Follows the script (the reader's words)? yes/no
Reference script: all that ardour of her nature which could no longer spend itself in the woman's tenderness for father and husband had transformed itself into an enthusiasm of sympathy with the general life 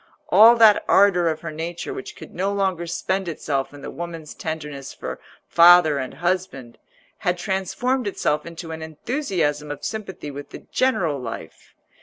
yes